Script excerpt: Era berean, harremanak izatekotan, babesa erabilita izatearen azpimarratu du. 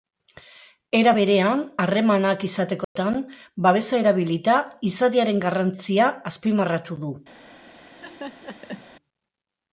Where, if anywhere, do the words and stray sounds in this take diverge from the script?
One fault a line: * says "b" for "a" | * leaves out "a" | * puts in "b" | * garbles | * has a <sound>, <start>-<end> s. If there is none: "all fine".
* has a dropout, 2.8-3.0 s
* puts in "garrantzia"
* has a laugh, 7.9-8.9 s